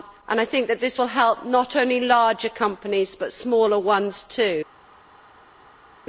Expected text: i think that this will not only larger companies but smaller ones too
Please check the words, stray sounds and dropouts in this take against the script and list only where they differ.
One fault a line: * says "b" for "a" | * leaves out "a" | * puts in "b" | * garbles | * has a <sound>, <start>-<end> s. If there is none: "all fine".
* puts in "help"